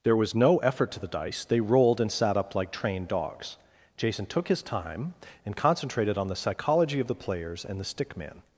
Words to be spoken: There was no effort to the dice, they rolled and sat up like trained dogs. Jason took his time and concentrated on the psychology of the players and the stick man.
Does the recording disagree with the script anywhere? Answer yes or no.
no